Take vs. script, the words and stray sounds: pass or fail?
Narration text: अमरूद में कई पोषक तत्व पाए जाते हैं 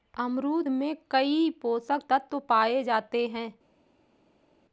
pass